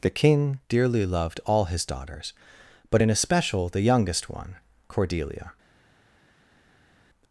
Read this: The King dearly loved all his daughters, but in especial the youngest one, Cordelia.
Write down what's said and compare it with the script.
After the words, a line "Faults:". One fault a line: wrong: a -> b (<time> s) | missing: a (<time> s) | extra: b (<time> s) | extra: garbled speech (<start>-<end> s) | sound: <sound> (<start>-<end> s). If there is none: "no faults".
The King dearly loved all his daughters, but in especial the youngest one, Cordelia.
Faults:
no faults